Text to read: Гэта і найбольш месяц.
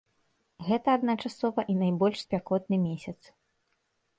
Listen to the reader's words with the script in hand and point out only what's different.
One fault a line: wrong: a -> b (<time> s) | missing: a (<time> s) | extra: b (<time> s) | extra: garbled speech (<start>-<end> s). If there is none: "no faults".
extra: адначасова (1.0 s)
extra: спякотны (2.2 s)